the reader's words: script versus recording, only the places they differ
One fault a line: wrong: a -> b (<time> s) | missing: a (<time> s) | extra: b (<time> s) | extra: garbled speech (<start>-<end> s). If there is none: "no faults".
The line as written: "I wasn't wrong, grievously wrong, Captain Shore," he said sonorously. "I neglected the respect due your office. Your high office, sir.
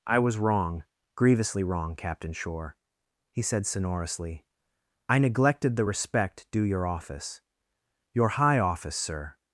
wrong: wasn't -> was (0.2 s)